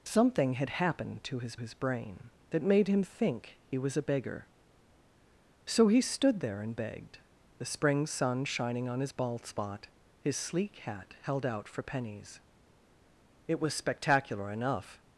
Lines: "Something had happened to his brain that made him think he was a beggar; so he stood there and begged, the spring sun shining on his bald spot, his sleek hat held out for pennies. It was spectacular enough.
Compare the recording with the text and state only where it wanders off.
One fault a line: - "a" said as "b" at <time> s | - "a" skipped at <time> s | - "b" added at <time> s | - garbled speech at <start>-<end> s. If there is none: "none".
- "his" added at 1.6 s